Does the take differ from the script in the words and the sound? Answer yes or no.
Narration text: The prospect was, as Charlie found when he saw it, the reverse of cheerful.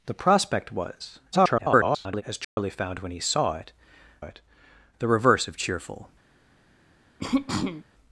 yes